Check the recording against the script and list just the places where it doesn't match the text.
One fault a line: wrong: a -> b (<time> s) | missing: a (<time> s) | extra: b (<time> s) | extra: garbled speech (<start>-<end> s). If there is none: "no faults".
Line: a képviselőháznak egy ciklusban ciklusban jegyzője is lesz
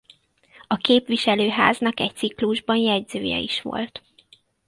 missing: ciklusban (2.8 s)
wrong: lesz -> volt (3.6 s)